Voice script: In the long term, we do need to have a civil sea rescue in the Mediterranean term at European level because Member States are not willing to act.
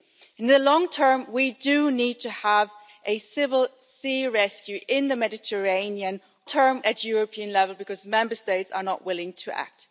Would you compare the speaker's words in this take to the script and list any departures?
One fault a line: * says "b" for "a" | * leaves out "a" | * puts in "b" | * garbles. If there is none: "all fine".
all fine